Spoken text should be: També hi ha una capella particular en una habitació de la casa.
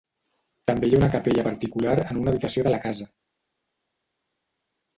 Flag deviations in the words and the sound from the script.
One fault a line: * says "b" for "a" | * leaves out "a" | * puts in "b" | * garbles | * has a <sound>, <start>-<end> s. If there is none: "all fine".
all fine